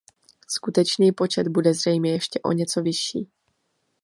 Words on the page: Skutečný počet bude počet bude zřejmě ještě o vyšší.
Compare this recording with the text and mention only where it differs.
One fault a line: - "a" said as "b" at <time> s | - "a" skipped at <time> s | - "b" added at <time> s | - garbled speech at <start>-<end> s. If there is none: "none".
- "počet bude" skipped at 1.7 s
- "něco" added at 2.5 s